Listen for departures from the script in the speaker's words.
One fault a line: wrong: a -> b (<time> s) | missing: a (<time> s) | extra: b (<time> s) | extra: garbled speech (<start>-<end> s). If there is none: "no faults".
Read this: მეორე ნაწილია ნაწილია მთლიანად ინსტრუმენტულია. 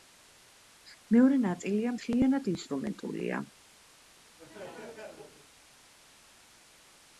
missing: ნაწილია (1.9 s)